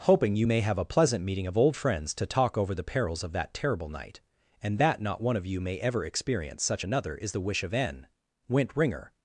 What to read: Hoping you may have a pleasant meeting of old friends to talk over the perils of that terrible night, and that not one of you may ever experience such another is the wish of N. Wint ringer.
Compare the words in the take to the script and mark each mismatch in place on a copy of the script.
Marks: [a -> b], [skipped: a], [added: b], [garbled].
Hoping you may have a pleasant meeting of old friends to talk over the perils of that terrible night, and that not one of you may ever experience such another is the wish of N. Wint ringer.